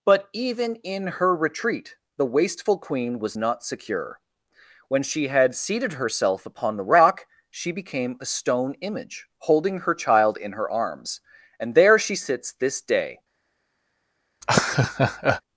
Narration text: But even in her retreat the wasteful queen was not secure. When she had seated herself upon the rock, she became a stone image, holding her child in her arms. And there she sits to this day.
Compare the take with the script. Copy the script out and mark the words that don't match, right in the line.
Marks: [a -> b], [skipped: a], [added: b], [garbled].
But even in her retreat the wasteful queen was not secure. When she had seated herself upon the rock, she became a stone image, holding her child in her arms. And there she sits [skipped: to] this day.